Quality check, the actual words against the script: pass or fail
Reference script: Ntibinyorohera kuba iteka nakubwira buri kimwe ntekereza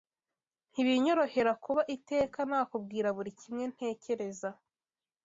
pass